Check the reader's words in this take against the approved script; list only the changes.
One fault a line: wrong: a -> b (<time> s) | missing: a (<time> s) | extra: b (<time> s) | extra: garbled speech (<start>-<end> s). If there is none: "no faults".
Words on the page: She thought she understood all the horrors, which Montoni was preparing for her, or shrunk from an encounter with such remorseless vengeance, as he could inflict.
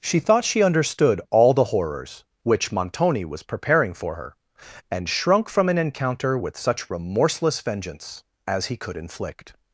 wrong: or -> and (4.9 s)